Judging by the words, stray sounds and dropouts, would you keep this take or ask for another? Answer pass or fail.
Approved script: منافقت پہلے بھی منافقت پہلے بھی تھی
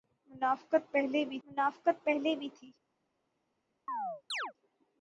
fail